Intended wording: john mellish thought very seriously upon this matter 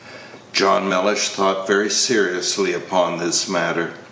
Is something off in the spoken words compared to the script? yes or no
no